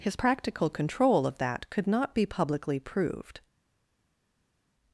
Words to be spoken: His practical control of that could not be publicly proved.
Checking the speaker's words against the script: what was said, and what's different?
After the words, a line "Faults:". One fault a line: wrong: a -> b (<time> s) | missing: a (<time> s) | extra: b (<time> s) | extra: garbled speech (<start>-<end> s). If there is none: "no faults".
His practical control of that could not be publicly proved.
Faults:
no faults